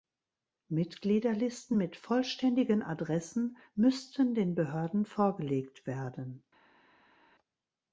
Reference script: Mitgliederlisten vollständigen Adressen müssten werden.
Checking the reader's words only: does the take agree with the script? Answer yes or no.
no